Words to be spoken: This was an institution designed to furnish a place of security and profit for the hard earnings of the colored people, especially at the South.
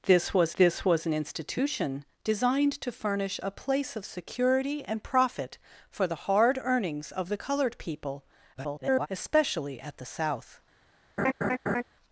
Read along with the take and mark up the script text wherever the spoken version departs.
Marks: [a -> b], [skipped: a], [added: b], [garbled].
This was [added: this was] an institution designed to furnish a place of security and profit for the hard earnings of the colored people, [garbled] especially at the South.